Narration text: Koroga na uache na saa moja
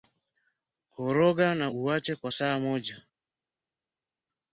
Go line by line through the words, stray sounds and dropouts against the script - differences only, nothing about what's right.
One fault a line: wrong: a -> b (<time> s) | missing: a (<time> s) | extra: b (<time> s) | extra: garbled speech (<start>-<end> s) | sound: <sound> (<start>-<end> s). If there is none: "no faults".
wrong: na -> kwa (2.1 s)